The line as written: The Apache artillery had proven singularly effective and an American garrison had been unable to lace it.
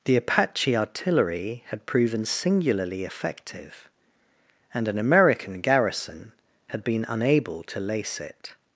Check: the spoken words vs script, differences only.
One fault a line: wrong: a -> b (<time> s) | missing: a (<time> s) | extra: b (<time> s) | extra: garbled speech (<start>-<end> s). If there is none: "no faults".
no faults